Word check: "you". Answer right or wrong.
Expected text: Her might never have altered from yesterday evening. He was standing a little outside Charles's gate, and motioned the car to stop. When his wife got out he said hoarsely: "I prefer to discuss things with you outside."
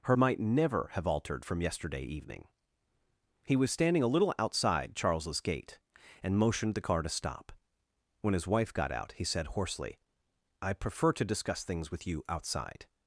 right